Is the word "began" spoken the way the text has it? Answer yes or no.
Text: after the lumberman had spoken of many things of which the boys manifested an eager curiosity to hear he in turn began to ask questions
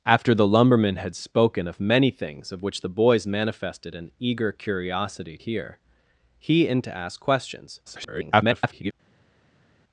no